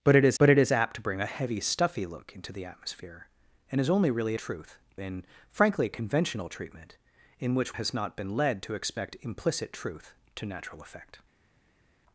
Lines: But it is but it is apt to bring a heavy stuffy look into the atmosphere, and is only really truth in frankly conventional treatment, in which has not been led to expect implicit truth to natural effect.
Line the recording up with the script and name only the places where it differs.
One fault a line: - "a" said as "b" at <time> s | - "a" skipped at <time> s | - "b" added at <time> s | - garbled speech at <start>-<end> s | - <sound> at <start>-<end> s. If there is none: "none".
none